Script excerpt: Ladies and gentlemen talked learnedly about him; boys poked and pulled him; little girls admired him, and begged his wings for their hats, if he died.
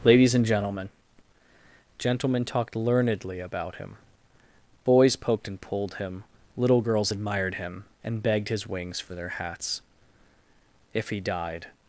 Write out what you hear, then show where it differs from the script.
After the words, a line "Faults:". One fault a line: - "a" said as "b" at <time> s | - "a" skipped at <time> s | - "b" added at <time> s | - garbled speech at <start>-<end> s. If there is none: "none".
Ladies and gentlemen gentlemen talked learnedly about him; boys poked and pulled him; little girls admired him, and begged his wings for their hats, if he died.
Faults:
- "gentlemen" added at 2.0 s